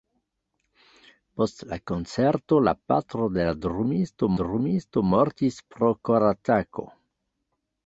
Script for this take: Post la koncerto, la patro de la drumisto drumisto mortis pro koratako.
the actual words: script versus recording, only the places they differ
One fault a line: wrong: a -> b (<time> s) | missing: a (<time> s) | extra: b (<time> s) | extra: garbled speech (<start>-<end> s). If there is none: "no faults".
no faults